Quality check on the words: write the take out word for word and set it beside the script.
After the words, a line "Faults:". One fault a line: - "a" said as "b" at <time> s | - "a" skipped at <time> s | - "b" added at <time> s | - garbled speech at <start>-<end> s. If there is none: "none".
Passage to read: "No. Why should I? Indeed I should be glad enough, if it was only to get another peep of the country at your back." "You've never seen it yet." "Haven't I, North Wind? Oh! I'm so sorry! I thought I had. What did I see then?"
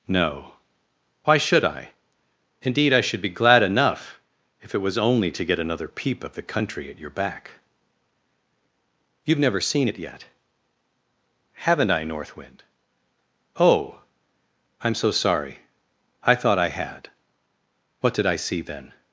"No. Why should I? Indeed I should be glad enough, if it was only to get another peep of the country at your back." "You've never seen it yet." "Haven't I, North Wind? Oh! I'm so sorry! I thought I had. What did I see then?"
Faults:
none